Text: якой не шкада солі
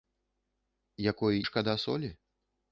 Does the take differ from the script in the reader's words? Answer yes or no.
yes